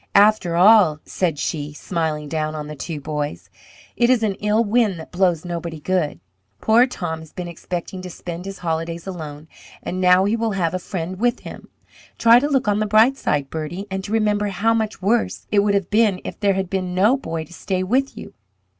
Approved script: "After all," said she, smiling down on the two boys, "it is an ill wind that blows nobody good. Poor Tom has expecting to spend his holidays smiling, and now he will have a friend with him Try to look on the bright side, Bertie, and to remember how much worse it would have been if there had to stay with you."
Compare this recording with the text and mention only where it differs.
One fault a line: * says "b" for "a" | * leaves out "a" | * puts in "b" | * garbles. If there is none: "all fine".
* puts in "been"
* says "alone" for "smiling"
* puts in "been no boy"